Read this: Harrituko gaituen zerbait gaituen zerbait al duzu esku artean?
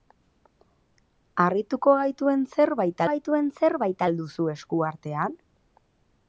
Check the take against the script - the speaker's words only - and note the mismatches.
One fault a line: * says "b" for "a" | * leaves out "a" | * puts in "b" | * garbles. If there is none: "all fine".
all fine